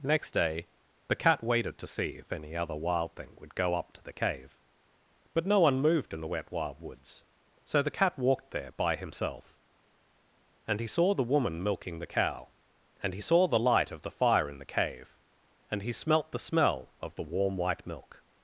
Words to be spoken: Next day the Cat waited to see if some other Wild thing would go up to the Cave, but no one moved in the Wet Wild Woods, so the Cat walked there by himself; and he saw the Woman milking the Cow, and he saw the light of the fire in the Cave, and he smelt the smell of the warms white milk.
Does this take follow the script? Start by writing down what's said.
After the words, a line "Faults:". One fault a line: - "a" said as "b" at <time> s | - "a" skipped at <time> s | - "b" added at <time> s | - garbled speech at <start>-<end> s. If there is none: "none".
Next day the Cat waited to see if any other Wild thing would go up to the Cave, but no one moved in the Wet Wild Woods, so the Cat walked there by himself; and he saw the Woman milking the Cow, and he saw the light of the fire in the Cave, and he smelt the smell of the warm white milk.
Faults:
- "some" said as "any" at 2.3 s
- "warms" said as "warm" at 17.2 s